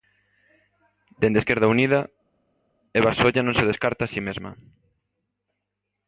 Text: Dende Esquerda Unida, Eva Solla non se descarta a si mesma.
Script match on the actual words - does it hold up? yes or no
yes